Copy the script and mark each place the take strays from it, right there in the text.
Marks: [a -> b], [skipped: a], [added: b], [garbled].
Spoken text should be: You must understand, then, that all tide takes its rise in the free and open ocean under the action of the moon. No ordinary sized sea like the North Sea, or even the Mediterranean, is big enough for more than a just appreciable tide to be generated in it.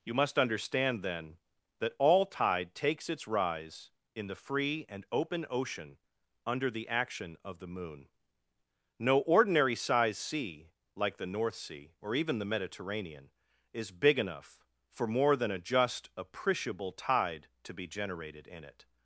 You must understand, then, that all tide takes its rise in the free and open ocean under the action of the moon. No ordinary sized sea like the North Sea, or even the Mediterranean, is big enough for more than a just appreciable tide to be generated in it.